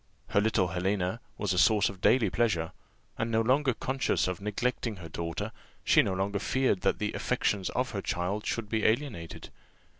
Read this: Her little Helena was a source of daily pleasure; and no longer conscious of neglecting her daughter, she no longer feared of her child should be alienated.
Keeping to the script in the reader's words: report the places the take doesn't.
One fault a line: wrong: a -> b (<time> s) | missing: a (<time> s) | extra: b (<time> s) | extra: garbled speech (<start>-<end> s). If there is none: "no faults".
extra: that the affections (6.8 s)